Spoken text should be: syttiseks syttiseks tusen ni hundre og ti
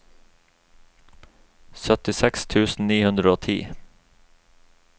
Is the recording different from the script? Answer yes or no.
yes